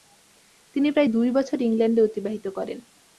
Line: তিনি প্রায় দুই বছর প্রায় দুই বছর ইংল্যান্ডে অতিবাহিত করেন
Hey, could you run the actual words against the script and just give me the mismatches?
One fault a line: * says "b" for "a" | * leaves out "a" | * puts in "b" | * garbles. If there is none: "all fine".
* leaves out "প্রায় দুই বছর"